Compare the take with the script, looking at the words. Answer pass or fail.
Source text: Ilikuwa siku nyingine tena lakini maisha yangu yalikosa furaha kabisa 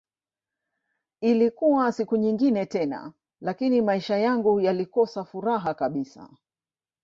pass